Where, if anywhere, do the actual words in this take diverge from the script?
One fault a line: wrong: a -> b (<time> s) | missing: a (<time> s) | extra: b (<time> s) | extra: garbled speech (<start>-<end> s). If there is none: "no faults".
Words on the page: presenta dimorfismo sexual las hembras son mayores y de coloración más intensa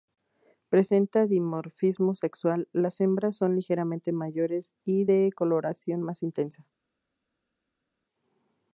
extra: ligeramente (3.5 s)